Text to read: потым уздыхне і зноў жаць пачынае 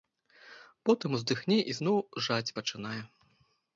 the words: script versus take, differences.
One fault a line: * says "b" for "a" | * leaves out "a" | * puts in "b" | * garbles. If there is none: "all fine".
all fine